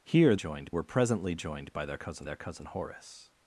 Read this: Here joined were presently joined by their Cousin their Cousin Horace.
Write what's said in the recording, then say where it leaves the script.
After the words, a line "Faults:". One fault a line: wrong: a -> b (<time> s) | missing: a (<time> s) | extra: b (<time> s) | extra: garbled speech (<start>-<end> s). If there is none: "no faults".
Here joined were presently joined by their Cousin their Cousin Horace.
Faults:
no faults